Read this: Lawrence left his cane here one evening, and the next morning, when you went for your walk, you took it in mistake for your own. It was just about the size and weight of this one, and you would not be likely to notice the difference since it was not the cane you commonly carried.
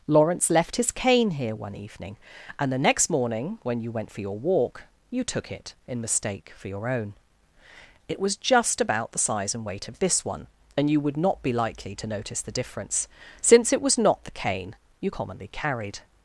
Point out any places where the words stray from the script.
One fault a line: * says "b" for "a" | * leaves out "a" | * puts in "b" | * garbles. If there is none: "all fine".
all fine